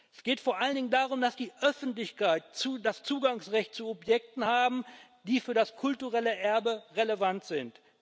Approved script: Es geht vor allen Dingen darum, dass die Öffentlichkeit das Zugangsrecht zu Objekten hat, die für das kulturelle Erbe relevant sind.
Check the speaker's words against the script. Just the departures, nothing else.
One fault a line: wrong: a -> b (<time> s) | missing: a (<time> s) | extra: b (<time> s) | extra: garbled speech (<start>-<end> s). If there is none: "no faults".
no faults